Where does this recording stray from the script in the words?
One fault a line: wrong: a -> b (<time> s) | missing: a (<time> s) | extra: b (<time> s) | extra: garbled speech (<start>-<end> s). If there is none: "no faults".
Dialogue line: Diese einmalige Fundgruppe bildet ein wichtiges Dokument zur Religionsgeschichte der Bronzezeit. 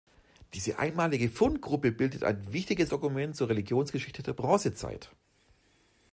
no faults